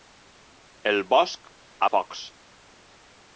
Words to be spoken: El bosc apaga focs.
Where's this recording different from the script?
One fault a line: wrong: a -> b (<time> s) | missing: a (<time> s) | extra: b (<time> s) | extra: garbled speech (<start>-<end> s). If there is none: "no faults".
missing: apaga (1.5 s)